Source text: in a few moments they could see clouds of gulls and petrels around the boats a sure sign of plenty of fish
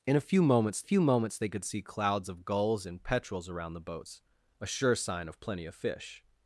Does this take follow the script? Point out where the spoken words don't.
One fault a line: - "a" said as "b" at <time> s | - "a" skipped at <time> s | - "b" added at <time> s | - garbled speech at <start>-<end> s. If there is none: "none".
- "few moments" added at 0.8 s